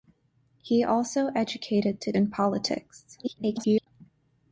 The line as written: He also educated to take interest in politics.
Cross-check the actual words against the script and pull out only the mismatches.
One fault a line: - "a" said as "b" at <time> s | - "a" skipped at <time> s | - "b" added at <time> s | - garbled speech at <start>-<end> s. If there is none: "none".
- "take interest" skipped at 2.1 s
- garbled speech at 3.2-3.9 s